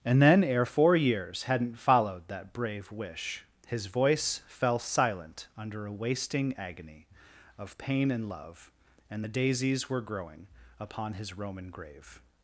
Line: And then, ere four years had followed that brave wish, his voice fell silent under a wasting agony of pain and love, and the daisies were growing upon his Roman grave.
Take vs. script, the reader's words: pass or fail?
fail